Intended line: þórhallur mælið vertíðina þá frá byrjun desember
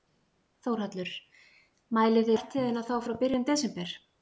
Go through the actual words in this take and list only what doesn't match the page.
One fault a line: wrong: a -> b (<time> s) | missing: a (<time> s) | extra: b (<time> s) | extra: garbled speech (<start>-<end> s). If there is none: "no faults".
no faults